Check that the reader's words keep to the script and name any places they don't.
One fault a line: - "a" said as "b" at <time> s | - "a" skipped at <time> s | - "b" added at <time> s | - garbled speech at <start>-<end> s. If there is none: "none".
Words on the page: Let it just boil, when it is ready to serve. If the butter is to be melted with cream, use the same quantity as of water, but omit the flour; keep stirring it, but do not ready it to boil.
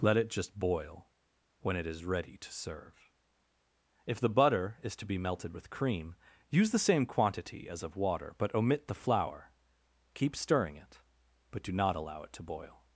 - "ready" said as "allow" at 11.9 s